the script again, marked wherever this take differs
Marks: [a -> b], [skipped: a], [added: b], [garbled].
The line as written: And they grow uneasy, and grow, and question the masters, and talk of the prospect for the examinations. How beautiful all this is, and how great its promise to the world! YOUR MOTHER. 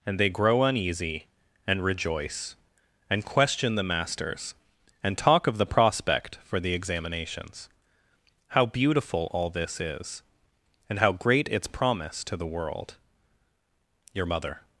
And they grow uneasy, and [grow, -> rejoice] and question the masters, and talk of the prospect for the examinations. How beautiful all this is, and how great its promise to the world! YOUR MOTHER.